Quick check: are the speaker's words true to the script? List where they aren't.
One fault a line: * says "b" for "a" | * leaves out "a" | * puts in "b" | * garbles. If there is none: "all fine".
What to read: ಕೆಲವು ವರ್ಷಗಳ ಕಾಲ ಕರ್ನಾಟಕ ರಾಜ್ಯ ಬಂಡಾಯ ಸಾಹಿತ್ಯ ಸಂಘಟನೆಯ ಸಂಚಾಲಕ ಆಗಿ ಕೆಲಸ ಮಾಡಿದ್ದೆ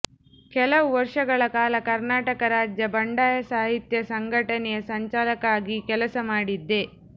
all fine